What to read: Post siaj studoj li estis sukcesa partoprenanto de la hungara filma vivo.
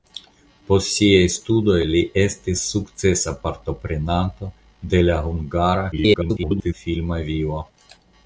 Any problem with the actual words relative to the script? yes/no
yes